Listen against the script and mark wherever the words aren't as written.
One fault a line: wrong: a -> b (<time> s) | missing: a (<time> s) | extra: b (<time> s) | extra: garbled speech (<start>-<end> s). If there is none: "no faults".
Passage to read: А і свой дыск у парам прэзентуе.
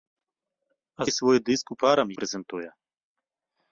no faults